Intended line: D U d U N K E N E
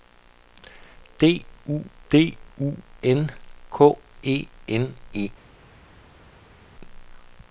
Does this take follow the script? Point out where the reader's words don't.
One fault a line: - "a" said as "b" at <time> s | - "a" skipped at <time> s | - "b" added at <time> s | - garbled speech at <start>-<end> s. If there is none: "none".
none